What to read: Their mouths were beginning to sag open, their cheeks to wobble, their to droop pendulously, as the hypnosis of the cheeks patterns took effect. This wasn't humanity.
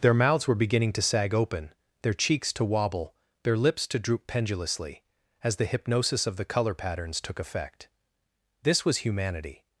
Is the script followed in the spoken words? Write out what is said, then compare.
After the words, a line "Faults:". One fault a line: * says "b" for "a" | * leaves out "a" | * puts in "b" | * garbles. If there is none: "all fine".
Their mouths were beginning to sag open, their cheeks to wobble, their lips to droop pendulously, as the hypnosis of the color patterns took effect. This was humanity.
Faults:
* puts in "lips"
* says "color" for "cheeks"
* says "was" for "wasn't"